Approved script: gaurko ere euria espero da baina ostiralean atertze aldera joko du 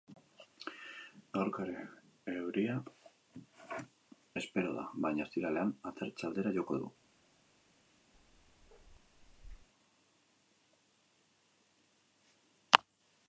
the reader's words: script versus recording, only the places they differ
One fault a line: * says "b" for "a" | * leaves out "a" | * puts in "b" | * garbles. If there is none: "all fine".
all fine